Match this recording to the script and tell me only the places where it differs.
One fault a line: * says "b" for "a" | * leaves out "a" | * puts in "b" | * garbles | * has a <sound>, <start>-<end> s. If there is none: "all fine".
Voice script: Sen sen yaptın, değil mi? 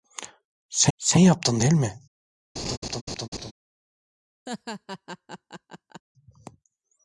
* has a laugh, 2.6-3.5 s
* has a laugh, 4.5-6.0 s